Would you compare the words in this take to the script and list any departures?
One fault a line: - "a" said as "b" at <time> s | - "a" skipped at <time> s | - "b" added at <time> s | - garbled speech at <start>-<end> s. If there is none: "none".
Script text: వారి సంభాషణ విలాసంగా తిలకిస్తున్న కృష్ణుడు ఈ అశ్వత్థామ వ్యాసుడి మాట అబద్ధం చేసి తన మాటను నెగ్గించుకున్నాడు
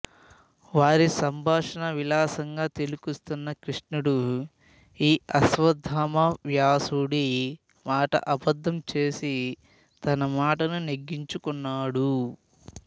none